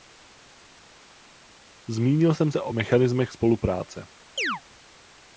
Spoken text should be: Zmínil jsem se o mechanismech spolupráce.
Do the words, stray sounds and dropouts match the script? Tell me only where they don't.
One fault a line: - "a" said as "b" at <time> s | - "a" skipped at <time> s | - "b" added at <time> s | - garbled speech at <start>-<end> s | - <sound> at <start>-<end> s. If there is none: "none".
- chirp at 4.4-4.6 s